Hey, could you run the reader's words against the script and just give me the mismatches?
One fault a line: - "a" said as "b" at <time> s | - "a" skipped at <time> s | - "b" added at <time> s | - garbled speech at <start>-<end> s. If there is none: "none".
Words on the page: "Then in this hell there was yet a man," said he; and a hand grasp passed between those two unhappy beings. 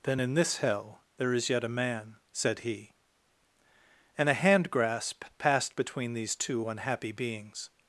- "was" said as "is" at 1.3 s
- "those" said as "these" at 6.1 s